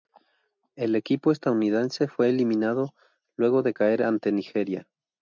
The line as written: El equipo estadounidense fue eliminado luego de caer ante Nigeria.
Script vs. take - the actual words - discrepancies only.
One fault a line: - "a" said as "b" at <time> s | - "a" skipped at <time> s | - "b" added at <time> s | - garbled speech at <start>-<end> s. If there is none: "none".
none